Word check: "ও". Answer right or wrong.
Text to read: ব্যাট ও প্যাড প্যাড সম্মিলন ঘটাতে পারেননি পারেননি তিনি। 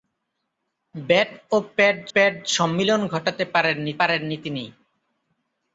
right